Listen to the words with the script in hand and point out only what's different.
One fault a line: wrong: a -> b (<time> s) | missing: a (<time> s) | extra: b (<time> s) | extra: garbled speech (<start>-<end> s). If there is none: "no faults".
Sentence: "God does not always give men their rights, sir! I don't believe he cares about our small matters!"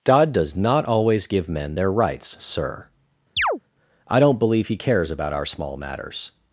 no faults